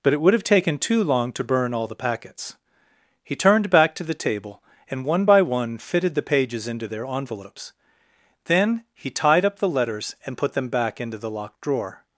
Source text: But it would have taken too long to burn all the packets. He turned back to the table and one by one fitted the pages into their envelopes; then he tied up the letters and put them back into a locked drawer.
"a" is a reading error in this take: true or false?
true